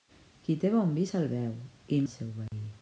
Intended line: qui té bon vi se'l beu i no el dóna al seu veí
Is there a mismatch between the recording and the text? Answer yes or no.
yes